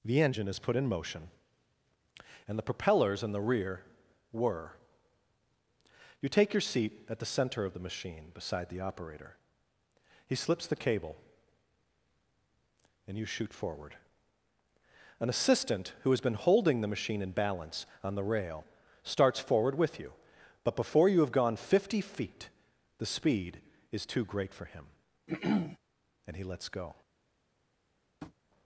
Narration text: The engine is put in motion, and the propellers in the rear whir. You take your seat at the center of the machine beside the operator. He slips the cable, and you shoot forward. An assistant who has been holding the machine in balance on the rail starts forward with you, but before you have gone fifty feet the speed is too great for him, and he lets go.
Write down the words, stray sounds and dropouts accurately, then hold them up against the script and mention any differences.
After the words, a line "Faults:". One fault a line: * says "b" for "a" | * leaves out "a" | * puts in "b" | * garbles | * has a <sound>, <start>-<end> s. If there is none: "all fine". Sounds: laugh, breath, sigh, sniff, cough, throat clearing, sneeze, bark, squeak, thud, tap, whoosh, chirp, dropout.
The engine is put in motion, and the propellers in the rear whir. You take your seat at the center of the machine beside the operator. He slips the cable, and you shoot forward. An assistant who has been holding the machine in balance on the rail starts forward with you, but before you have gone fifty feet the speed is too great for him, and he lets go.
Faults:
* has a throat clearing, 25.3-25.8 s
* has a tap, 28.2-28.3 s